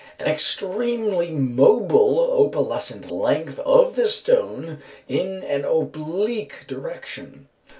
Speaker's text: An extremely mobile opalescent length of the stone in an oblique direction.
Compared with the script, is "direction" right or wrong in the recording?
right